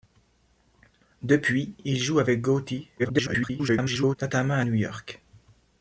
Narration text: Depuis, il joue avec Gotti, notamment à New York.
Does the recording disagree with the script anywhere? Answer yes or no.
yes